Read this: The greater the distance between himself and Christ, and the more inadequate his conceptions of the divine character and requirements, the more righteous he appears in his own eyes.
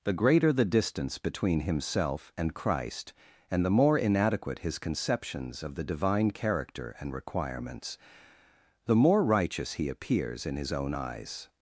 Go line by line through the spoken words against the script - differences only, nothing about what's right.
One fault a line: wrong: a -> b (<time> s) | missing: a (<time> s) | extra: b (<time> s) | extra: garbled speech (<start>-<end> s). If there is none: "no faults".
no faults